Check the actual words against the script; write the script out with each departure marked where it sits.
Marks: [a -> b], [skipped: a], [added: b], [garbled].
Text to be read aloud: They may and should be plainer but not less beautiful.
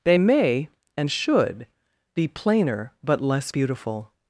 They may and should be plainer but [skipped: not] less beautiful.